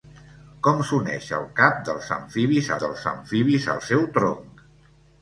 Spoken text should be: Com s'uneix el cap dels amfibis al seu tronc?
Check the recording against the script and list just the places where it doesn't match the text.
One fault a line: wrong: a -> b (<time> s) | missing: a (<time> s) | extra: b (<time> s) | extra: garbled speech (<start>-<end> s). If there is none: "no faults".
extra: dels amfibis (2.9 s)